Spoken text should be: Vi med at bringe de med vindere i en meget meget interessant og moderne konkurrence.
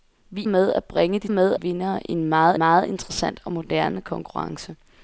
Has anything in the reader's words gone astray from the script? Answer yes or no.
no